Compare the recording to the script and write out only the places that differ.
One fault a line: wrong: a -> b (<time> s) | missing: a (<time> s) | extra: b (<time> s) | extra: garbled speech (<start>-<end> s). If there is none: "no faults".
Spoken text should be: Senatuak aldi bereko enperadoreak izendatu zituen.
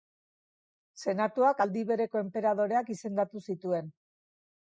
no faults